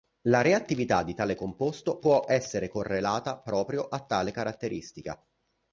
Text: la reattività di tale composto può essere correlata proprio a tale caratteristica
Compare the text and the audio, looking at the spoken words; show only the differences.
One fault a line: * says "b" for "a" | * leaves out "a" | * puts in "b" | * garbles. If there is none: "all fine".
all fine